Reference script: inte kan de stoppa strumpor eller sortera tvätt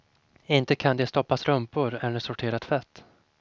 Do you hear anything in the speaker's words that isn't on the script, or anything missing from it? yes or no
no